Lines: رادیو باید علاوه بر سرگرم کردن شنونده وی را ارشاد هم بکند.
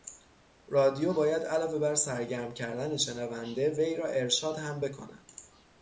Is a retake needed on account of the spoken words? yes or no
no